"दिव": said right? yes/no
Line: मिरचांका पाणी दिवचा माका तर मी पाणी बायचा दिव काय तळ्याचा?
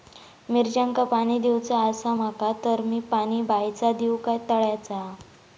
yes